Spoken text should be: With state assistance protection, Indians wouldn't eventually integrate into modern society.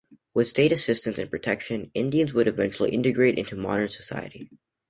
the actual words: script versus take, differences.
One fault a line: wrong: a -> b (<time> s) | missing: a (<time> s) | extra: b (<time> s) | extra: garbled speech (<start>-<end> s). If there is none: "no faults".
extra: and (1.2 s)
wrong: wouldn't -> would (2.3 s)